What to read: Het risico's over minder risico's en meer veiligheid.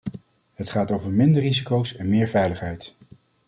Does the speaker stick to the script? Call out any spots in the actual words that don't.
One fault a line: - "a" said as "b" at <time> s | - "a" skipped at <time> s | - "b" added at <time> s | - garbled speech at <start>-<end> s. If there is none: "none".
- "risico's" said as "gaat" at 0.7 s